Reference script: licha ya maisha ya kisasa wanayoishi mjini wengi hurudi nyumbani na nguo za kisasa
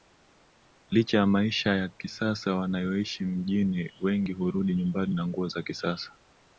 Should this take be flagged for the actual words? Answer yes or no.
no